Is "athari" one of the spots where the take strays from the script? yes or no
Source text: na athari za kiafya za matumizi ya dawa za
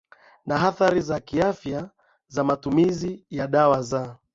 no